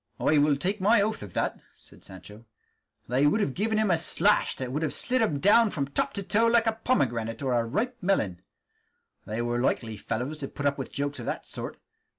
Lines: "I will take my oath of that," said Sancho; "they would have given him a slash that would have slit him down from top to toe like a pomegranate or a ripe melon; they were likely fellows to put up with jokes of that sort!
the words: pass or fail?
pass